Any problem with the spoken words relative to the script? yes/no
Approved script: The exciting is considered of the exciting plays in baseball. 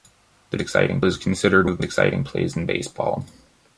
no